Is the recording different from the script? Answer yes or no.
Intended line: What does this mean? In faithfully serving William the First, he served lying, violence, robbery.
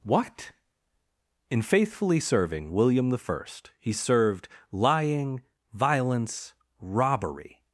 yes